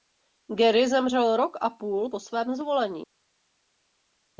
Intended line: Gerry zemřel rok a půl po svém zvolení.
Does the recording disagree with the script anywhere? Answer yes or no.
no